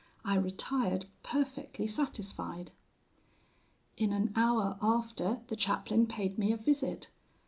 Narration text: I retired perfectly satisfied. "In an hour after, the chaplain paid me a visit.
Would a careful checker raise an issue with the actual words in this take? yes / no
no